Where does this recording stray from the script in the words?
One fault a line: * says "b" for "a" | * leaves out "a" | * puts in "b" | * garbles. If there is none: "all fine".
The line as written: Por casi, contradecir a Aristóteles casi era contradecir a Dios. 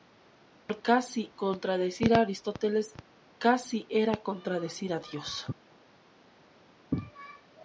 all fine